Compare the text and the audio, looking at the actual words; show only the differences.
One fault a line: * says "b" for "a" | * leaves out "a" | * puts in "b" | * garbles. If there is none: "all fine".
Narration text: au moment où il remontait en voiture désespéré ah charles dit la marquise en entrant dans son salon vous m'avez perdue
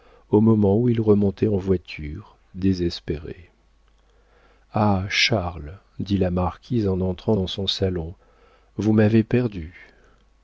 all fine